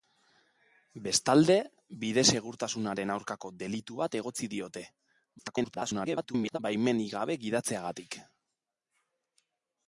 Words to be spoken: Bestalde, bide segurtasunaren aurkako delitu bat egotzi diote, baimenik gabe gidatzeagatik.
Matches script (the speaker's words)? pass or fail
fail